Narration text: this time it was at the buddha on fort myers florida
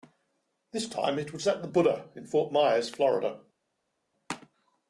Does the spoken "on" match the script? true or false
false